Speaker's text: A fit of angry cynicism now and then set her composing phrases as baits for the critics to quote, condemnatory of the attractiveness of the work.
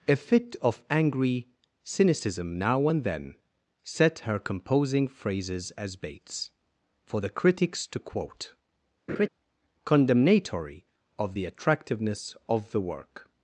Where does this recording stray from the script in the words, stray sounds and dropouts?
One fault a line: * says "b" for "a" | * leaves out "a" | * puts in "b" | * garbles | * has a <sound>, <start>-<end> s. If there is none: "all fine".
* has a laugh, 9.1-9.3 s